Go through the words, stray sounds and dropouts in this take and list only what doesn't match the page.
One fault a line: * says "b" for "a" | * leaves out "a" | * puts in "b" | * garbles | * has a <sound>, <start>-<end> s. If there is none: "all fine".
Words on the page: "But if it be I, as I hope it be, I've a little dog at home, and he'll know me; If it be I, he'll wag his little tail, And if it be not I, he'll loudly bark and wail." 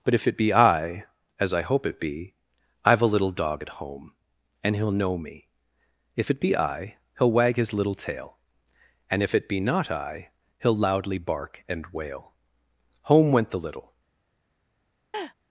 * puts in "Home went the little"
* has a laugh, 15.1-15.3 s